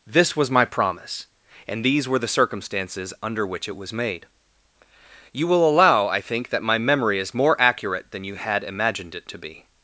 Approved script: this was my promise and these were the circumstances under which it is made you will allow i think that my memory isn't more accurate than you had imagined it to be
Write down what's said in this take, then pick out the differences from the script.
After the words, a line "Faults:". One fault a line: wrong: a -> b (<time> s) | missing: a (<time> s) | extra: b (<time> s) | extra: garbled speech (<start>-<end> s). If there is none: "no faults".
this was my promise and these were the circumstances under which it was made you will allow i think that my memory is more accurate than you had imagined it to be
Faults:
wrong: is -> was (3.8 s)
wrong: isn't -> is (7.2 s)